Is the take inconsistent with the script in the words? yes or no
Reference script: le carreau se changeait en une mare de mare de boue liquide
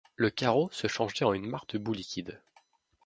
yes